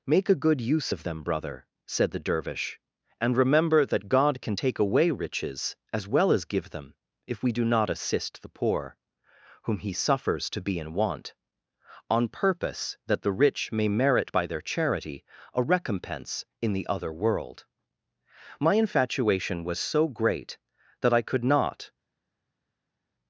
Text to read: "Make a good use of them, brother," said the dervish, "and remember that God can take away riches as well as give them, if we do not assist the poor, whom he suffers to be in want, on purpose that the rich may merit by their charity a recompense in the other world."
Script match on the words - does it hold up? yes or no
no